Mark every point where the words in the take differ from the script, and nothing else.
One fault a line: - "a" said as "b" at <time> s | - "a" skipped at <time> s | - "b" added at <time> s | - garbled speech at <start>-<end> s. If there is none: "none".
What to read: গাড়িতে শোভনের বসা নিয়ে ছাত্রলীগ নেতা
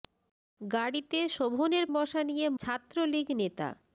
none